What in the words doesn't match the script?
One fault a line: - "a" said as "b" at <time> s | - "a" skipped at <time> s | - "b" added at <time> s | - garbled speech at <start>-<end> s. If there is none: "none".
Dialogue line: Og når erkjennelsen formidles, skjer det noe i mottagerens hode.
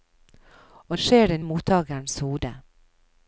- "når erkjennelsen formidles" skipped at 1.0 s
- "noe" skipped at 1.4 s